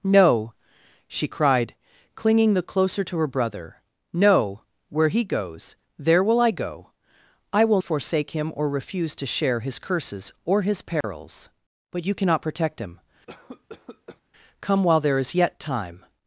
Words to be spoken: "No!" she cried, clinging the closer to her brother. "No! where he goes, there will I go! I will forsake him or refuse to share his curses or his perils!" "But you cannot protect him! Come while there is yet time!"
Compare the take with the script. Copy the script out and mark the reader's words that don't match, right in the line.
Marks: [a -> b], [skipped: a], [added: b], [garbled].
"No!" she cried, clinging the closer to her brother. "No! where he goes, there will I go! I will forsake him or refuse to share his curses or his perils!" "But you cannot protect him! Come while there is yet time!"